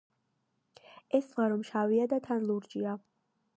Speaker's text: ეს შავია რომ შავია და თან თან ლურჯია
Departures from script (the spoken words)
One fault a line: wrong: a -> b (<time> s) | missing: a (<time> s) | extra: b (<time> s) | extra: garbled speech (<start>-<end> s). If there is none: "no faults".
wrong: შავია -> ზღვა (1.3 s)
missing: თან (2.5 s)